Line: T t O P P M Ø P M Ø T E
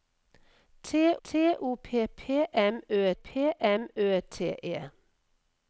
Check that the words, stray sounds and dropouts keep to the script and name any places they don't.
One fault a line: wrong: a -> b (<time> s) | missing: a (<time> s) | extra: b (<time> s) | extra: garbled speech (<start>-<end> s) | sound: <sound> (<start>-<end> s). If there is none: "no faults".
no faults